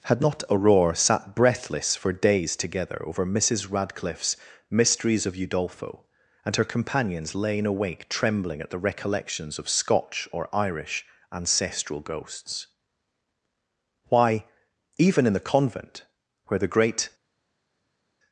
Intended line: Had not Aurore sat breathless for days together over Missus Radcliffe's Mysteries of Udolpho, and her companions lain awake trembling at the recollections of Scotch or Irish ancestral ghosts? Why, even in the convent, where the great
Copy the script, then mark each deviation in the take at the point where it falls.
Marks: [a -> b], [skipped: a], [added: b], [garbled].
Had not Aurore sat breathless for days together over Missus Radcliffe's Mysteries of Udolpho, and her companions lain awake trembling at the recollections of Scotch or Irish ancestral ghosts? Why, even in the convent, where the great